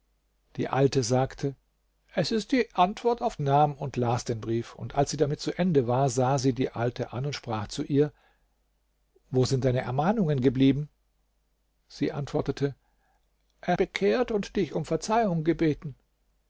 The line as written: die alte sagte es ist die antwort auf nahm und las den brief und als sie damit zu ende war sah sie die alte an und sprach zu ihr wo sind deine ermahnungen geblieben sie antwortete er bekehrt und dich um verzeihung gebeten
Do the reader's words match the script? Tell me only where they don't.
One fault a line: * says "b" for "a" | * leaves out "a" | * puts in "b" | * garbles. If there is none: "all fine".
all fine